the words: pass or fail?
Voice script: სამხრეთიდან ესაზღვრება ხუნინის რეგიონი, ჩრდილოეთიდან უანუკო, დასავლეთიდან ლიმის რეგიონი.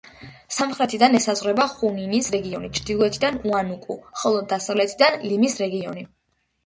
fail